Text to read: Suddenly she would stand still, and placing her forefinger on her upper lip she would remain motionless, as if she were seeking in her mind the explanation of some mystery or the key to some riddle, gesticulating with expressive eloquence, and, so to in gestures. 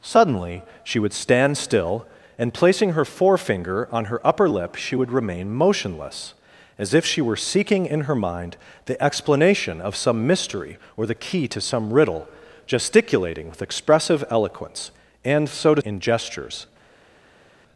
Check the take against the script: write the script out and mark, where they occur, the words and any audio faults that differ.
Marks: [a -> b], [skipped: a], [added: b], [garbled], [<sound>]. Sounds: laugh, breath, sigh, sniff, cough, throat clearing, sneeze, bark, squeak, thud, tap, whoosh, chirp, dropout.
Suddenly she would stand still, and placing her forefinger on her upper lip she would remain motionless, as if she were seeking in her mind the explanation of some mystery or the key to some riddle, gesticulating with expressive eloquence, and, so to in gestures.